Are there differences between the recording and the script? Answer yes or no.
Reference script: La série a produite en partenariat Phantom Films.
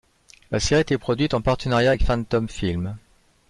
yes